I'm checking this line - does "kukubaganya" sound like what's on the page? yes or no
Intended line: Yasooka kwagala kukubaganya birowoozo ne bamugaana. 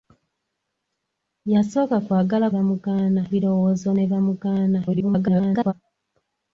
no